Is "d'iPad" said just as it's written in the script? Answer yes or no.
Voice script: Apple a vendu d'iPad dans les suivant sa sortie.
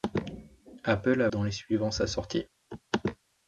no